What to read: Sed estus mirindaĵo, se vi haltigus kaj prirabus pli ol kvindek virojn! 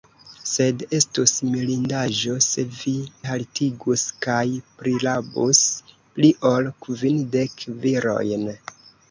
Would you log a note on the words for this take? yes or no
no